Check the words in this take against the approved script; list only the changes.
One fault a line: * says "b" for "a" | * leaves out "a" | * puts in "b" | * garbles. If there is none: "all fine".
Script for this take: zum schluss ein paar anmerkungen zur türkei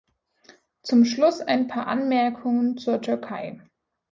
all fine